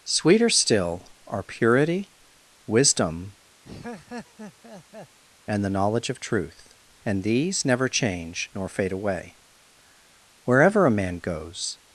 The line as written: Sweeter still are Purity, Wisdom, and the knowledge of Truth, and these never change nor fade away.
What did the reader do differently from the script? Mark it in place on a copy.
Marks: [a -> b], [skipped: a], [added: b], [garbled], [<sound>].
Sweeter still are Purity, Wisdom, [laugh] and the knowledge of Truth, and these never change nor fade away. [added: Wherever a man goes]